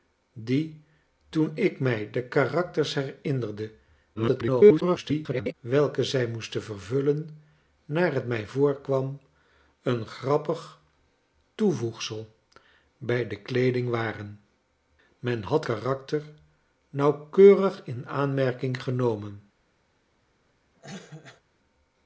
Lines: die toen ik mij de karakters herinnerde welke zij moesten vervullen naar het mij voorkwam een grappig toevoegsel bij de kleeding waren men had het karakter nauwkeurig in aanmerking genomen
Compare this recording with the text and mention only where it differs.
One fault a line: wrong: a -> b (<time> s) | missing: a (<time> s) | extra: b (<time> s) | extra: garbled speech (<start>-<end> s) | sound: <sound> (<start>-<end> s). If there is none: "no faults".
extra: garbled speech (4.2-5.5 s)
missing: het (15.6 s)
sound: cough (20.8-21.4 s)